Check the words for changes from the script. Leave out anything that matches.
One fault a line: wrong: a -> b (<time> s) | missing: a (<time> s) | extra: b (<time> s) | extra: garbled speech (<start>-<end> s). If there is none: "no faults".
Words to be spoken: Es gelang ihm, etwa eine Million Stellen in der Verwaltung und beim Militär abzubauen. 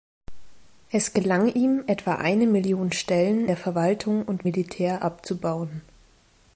missing: in (3.5 s)
missing: beim (4.5 s)